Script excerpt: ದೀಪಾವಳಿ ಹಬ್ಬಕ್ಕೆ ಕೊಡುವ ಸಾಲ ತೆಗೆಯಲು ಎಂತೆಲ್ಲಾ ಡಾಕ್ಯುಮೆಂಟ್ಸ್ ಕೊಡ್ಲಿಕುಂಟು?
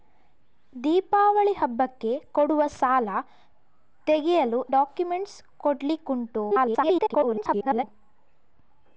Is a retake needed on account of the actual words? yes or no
yes